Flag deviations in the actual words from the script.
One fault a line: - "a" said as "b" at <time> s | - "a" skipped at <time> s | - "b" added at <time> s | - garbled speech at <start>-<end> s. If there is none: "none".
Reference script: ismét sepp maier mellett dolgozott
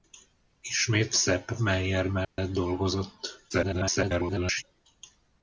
- garbled speech at 3.5-4.6 s